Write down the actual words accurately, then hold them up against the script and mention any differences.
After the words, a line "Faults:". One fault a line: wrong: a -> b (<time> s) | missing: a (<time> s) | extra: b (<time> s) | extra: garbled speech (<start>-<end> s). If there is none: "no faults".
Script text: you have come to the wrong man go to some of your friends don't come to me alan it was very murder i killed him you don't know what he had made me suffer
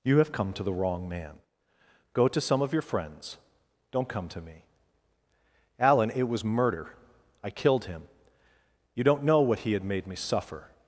you have come to the wrong man go to some of your friends don't come to me alan it was murder i killed him you don't know what he had made me suffer
Faults:
missing: very (6.4 s)